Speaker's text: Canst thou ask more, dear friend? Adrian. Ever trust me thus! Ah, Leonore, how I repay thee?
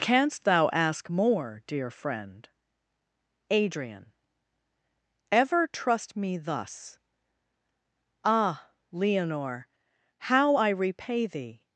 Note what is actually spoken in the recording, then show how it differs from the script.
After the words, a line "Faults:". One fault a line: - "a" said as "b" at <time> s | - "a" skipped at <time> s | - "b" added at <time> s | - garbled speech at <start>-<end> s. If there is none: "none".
Canst thou ask more, dear friend? Adrian. Ever trust me thus! Ah, Leonore, how I repay thee?
Faults:
none